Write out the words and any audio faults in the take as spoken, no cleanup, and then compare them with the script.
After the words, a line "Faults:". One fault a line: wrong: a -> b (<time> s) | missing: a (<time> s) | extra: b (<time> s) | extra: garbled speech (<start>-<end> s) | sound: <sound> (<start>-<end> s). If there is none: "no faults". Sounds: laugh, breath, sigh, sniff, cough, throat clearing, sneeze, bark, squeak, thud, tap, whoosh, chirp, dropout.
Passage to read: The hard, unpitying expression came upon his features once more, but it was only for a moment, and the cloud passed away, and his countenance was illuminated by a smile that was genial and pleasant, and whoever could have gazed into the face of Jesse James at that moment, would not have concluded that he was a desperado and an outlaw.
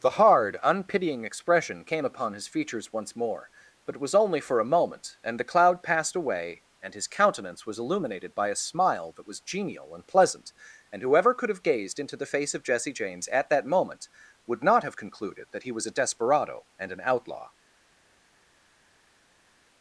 The hard, unpitying expression came upon his features once more, but it was only for a moment, and the cloud passed away, and his countenance was illuminated by a smile that was genial and pleasant, and whoever could have gazed into the face of Jesse James at that moment, would not have concluded that he was a desperado and an outlaw.
Faults:
no faults